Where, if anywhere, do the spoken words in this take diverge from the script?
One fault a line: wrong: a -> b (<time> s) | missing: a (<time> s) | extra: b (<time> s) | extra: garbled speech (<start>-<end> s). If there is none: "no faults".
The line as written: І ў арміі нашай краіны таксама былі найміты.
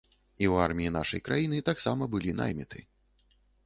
no faults